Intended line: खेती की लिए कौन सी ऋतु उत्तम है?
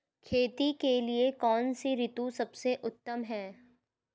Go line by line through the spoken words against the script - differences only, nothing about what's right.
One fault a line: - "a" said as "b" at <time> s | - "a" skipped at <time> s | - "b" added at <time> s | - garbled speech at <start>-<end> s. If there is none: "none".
- "की" said as "के" at 0.7 s
- "सबसे" added at 2.3 s